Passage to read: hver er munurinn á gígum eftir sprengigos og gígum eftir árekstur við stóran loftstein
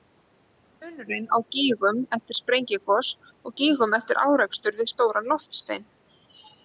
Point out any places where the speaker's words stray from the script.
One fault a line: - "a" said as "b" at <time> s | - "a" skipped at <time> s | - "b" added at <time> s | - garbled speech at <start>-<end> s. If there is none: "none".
none